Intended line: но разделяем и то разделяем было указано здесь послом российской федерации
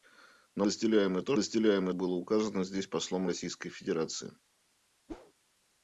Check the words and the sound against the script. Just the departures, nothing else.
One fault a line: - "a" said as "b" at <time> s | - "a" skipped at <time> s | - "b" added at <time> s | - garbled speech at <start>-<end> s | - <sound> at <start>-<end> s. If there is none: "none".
- whoosh at 5.1-5.3 s